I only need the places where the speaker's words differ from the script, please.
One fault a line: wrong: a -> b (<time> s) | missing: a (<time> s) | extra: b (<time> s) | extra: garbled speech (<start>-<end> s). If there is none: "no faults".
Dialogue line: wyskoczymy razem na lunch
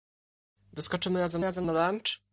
extra: razem (1.4 s)